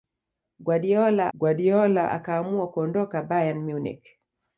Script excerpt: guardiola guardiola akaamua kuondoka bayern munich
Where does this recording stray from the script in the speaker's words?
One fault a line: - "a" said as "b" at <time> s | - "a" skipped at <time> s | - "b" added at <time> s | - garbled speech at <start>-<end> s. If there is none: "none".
none